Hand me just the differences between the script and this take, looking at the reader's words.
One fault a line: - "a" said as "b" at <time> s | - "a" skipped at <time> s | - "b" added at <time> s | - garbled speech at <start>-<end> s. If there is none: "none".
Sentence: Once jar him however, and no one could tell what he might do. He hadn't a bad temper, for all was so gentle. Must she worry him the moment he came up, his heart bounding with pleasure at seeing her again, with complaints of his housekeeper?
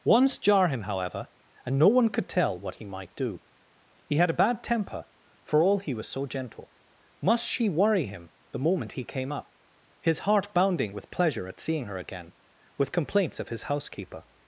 - "hadn't" said as "had" at 4.2 s
- "he" added at 5.8 s